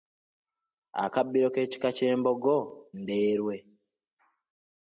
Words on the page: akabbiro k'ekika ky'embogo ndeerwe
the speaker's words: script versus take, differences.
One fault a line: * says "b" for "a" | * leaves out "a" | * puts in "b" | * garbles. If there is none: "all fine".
all fine